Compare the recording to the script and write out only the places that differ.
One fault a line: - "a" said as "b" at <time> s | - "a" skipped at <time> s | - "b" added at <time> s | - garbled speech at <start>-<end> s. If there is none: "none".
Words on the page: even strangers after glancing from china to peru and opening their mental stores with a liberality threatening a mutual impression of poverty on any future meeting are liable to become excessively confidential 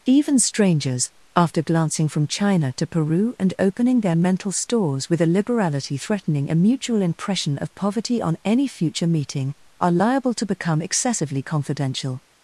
none